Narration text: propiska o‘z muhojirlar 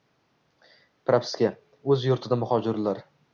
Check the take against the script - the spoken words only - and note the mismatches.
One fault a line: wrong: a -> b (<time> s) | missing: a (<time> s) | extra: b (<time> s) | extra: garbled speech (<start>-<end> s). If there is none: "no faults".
extra: yurtida (2.1 s)